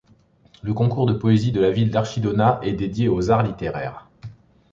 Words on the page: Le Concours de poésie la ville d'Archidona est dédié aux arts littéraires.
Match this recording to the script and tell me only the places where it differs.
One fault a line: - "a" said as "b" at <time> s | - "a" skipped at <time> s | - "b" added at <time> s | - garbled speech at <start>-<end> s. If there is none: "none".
- "de" added at 1.5 s